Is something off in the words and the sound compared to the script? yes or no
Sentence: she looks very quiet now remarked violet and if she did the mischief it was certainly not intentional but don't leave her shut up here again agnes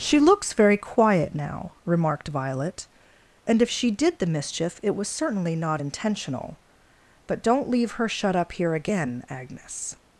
no